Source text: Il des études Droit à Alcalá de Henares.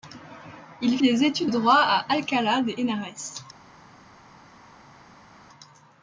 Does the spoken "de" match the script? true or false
true